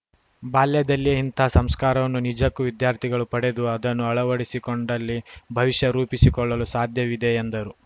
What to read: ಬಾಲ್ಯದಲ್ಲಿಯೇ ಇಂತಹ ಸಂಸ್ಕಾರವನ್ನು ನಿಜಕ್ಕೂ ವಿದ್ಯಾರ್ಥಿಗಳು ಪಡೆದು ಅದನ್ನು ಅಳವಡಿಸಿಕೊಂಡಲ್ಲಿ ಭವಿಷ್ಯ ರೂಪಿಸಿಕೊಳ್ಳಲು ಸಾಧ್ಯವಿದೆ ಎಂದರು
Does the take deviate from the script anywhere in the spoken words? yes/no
no